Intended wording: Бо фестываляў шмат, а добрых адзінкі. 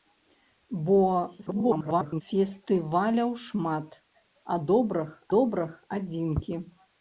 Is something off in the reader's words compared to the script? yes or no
yes